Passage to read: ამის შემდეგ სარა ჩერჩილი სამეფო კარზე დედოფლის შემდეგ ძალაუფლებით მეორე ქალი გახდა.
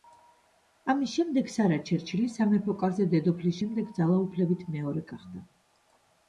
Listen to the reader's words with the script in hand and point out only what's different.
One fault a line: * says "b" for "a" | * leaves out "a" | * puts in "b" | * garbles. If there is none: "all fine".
* leaves out "ქალი"